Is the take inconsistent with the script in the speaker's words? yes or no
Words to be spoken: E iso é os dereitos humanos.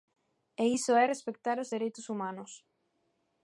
yes